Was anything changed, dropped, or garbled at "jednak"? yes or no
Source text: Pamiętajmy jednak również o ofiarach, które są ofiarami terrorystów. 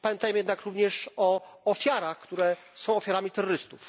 no